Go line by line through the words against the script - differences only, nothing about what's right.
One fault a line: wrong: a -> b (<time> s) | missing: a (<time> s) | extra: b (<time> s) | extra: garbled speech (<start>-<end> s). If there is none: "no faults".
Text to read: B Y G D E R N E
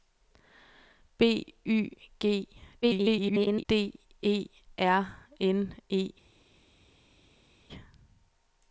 extra: garbled speech (2.8-3.7 s)